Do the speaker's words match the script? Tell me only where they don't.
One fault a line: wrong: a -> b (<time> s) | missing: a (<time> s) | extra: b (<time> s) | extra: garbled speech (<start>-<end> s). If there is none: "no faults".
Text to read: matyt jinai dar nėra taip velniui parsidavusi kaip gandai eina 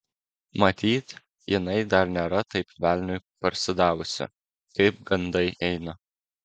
no faults